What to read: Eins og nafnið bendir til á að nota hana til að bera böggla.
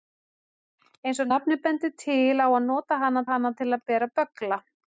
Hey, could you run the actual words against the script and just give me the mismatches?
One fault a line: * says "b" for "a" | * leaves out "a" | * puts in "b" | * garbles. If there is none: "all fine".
* puts in "hana"